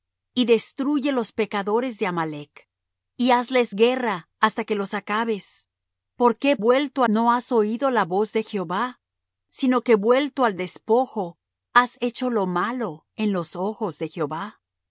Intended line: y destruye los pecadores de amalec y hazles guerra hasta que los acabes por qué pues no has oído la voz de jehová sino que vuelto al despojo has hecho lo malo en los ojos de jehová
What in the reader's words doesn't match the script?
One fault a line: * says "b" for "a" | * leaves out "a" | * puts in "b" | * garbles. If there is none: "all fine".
* says "vuelto" for "pues"